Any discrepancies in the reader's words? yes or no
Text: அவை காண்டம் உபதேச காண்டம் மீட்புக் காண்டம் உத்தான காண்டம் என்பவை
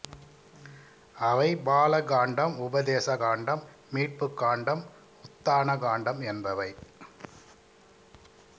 yes